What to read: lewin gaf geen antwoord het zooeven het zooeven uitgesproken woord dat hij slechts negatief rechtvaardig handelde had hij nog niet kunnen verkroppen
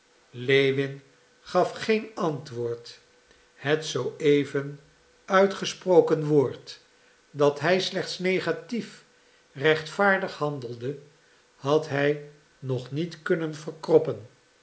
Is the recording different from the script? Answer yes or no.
yes